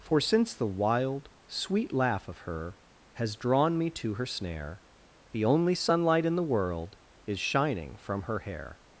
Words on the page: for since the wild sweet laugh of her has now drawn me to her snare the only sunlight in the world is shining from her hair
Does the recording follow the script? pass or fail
fail